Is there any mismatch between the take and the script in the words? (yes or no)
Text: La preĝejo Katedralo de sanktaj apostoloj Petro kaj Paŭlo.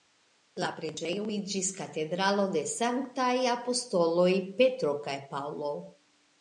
yes